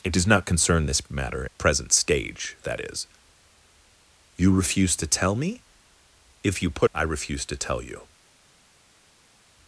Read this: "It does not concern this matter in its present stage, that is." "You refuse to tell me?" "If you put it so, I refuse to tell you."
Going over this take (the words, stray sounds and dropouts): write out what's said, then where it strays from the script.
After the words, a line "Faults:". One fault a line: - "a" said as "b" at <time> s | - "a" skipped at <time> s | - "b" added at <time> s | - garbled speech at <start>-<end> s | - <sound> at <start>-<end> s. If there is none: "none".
"It does not concern this matter present stage, that is." "You refuse to tell me?" "If you put I refuse to tell you."
Faults:
- "in its" skipped at 1.5 s
- "it so" skipped at 6.9 s